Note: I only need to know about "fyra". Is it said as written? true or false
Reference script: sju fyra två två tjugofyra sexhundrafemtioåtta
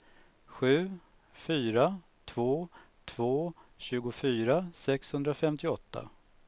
true